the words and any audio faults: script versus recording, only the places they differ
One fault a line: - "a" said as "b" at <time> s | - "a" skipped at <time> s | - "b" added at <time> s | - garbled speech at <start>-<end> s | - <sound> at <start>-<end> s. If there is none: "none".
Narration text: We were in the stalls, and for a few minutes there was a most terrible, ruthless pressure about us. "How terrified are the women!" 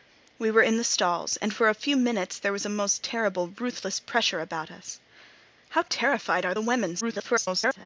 - garbled speech at 7.0-7.9 s